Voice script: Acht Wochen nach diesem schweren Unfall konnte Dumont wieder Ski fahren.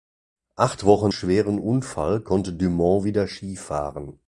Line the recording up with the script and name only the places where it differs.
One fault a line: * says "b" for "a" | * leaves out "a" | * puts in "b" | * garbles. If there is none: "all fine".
* leaves out "nach diesem"